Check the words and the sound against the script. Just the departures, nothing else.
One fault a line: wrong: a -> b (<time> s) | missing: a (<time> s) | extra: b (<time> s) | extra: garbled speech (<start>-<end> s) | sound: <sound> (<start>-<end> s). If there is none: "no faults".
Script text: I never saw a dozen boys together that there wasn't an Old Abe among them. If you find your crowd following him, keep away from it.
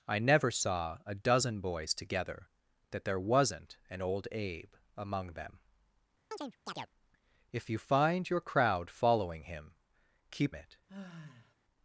sound: chirp (6.3-6.9 s)
missing: away from (10.5 s)
sound: sigh (10.9-11.5 s)